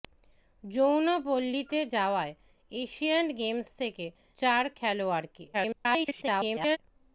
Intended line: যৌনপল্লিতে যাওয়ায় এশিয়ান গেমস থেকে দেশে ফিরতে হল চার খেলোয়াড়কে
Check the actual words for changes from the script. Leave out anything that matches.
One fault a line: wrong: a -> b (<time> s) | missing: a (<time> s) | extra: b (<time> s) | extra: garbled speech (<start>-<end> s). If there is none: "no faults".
missing: দেশে ফিরতে হল (4.1 s)
extra: garbled speech (5.5-6.8 s)